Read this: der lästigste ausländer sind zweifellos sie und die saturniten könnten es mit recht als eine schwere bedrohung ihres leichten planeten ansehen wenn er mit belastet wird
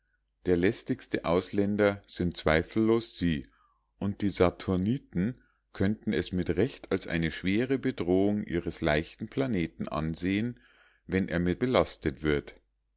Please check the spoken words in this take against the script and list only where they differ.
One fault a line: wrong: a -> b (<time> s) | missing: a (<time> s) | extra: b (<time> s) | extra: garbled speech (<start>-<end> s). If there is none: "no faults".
no faults